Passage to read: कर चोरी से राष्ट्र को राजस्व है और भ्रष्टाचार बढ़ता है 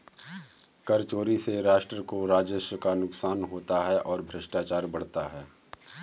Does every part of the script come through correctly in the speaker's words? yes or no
no